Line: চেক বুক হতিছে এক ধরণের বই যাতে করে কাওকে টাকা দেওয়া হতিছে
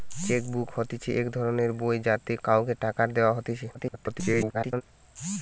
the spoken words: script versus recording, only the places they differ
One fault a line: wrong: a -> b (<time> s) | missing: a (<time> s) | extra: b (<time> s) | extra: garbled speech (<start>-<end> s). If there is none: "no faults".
missing: করে (2.3 s)
extra: garbled speech (3.7-4.8 s)